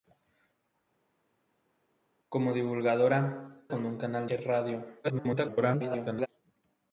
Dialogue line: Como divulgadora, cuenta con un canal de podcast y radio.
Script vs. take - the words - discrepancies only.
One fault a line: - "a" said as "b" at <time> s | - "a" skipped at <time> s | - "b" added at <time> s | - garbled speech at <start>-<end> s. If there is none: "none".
- "cuenta" skipped at 3.7 s
- "de podcast" skipped at 4.3 s
- garbled speech at 5.0-6.3 s